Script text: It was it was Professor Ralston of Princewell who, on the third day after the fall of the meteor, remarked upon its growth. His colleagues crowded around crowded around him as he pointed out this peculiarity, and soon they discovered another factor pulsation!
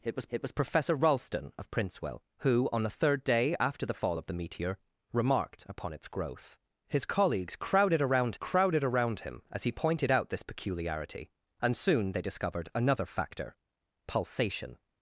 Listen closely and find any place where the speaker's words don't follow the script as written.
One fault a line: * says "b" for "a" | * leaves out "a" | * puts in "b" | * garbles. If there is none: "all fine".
all fine